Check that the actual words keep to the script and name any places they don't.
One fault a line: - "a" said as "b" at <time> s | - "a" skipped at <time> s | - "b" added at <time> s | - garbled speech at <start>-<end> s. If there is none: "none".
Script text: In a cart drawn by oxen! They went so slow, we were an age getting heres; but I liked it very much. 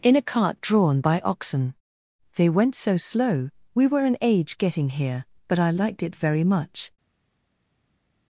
- "heres" said as "here" at 4.9 s